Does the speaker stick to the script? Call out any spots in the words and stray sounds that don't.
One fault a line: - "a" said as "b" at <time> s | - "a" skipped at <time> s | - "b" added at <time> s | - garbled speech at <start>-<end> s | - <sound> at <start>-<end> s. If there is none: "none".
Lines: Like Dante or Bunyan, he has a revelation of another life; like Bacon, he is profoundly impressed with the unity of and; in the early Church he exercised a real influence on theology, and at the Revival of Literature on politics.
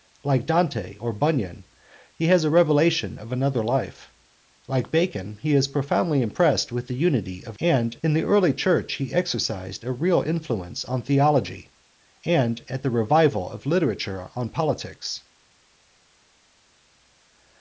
none